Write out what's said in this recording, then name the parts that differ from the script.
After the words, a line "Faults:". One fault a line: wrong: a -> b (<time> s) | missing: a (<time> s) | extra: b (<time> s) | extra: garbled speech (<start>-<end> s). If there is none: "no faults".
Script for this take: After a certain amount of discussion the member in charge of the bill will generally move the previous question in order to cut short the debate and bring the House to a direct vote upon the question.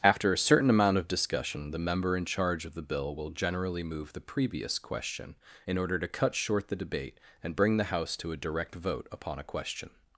After a certain amount of discussion the member in charge of the bill will generally move the previous question in order to cut short the debate and bring the House to a direct vote upon a question.
Faults:
wrong: the -> a (9.4 s)